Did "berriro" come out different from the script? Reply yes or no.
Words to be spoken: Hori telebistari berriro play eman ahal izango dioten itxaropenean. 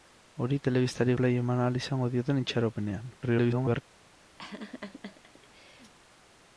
yes